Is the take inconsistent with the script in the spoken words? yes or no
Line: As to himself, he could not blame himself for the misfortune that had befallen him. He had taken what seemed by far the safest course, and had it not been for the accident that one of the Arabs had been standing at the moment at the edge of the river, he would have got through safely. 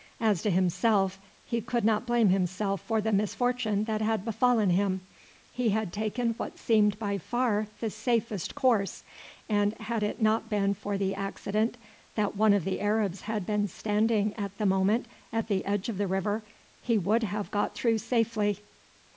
no